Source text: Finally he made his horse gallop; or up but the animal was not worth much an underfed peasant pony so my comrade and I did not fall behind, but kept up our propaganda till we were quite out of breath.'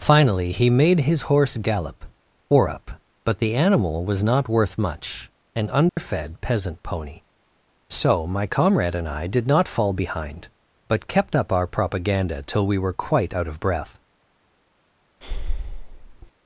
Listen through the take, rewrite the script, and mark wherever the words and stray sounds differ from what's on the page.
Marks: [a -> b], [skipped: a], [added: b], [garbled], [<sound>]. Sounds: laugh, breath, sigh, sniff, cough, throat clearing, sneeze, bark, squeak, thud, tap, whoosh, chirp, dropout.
Finally he made his horse gallop; or up but the animal was not worth much an underfed [dropout] peasant pony so my comrade and I did not fall behind, but kept up our propaganda till we were quite out of breath.' [breath]